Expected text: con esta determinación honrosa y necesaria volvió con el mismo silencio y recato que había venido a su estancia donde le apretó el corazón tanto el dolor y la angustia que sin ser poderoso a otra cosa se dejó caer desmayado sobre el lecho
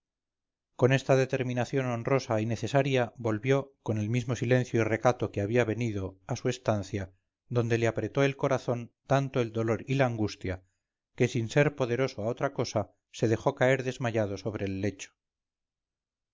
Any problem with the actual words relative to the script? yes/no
no